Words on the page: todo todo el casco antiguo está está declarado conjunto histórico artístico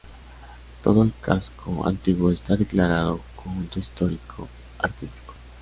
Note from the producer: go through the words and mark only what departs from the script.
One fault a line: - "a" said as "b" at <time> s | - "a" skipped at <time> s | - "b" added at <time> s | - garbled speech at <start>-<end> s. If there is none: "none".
- "todo" skipped at 1.0 s
- "está" skipped at 2.5 s